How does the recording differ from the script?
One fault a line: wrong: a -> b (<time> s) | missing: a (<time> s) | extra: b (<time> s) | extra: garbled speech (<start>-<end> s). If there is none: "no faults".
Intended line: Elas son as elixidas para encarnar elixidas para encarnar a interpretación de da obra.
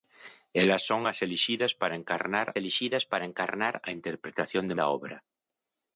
no faults